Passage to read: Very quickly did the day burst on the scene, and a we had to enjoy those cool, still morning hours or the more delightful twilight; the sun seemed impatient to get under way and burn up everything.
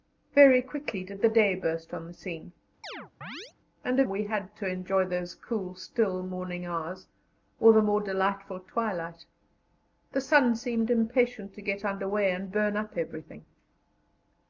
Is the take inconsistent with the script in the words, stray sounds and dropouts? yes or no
yes